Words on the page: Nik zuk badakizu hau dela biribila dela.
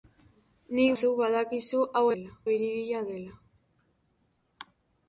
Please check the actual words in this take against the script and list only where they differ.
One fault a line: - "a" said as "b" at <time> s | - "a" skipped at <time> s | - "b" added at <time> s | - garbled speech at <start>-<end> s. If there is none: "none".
none